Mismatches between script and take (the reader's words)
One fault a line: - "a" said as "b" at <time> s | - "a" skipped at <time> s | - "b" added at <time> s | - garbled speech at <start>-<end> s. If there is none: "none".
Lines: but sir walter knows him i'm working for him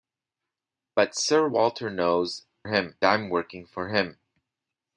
none